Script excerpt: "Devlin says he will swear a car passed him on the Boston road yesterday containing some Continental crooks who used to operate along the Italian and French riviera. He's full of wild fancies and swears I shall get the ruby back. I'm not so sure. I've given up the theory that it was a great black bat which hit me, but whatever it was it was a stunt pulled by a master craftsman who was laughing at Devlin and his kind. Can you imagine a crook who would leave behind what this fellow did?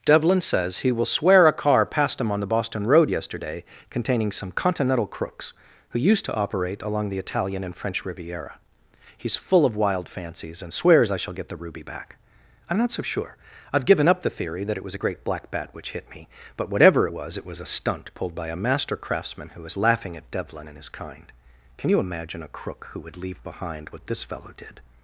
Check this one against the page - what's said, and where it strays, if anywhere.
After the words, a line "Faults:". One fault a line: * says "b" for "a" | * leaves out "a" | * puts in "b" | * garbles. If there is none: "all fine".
"Devlin says he will swear a car passed him on the Boston road yesterday containing some Continental crooks who used to operate along the Italian and French riviera. He's full of wild fancies and swears I shall get the ruby back. I'm not so sure. I've given up the theory that it was a great black bat which hit me, but whatever it was it was a stunt pulled by a master craftsman who was laughing at Devlin and his kind. Can you imagine a crook who would leave behind what this fellow did?
Faults:
all fine